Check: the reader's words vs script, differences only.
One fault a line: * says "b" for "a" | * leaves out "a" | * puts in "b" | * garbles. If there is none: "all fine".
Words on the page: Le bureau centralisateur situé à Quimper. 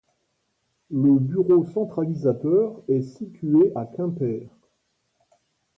* puts in "est"